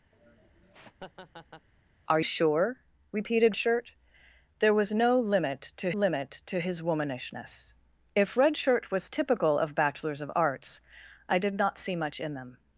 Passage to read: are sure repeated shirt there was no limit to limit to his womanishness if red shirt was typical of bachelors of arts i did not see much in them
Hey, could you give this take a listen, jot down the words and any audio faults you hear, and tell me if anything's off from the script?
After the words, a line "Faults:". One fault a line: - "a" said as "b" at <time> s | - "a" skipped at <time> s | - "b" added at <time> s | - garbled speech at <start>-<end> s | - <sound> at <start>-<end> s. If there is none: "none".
are sure repeated shirt there was no limit to limit to his womanishness if red shirt was typical of bachelors of arts i did not see much in them
Faults:
- laugh at 0.1-1.7 s